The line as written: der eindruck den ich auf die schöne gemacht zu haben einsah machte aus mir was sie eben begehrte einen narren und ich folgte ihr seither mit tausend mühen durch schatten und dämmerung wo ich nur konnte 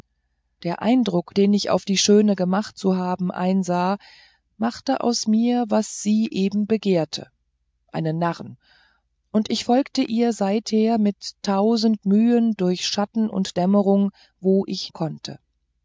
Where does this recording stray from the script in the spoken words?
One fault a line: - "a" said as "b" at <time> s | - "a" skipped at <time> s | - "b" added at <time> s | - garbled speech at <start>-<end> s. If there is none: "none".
- "nur" skipped at 14.9 s